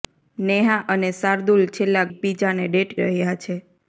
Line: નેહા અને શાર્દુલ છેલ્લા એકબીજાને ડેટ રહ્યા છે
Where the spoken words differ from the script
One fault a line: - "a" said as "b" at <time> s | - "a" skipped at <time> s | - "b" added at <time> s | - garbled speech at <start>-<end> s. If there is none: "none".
none